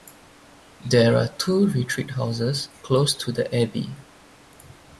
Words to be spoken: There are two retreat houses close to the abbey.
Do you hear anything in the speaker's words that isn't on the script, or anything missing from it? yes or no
no